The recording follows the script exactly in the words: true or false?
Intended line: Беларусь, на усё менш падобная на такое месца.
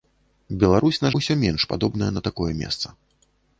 true